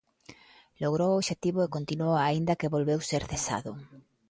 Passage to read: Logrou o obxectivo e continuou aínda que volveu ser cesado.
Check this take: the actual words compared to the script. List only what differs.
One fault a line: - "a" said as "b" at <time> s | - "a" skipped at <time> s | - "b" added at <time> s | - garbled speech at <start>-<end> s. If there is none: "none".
none